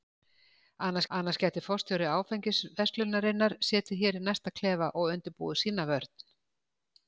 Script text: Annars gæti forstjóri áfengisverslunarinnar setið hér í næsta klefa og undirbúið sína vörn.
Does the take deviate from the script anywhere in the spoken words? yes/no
yes